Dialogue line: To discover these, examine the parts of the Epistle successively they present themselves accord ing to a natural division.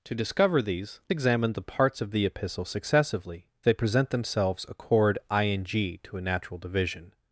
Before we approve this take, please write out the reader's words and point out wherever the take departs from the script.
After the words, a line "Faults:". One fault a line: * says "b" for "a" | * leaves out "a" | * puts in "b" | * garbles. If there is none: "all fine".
To discover these, examine the parts of the Epistle successively they present themselves accord ing to a natural division.
Faults:
all fine